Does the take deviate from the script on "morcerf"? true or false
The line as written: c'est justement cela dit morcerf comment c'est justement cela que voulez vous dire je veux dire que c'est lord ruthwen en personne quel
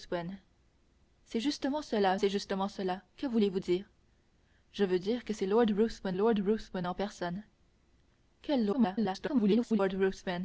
true